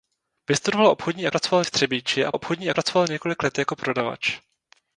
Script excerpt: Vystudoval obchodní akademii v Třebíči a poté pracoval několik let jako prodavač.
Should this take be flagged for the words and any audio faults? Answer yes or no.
yes